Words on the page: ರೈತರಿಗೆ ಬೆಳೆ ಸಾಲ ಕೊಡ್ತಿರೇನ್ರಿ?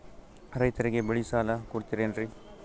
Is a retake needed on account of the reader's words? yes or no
no